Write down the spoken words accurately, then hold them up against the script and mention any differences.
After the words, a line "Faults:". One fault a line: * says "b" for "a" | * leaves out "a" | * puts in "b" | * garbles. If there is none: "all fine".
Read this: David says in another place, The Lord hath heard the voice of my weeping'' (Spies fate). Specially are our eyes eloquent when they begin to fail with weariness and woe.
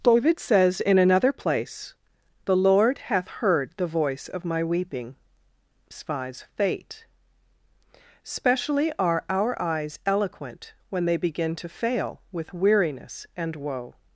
David says in another place, The Lord hath heard the voice of my weeping'' (Spies fate). Specially are our eyes eloquent when they begin to fail with weariness and woe.
Faults:
all fine